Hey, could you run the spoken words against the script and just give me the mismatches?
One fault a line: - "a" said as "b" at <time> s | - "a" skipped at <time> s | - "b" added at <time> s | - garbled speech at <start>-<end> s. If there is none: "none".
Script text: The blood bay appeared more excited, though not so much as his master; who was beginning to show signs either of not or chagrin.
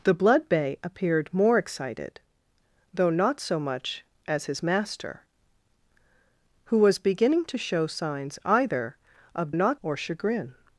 none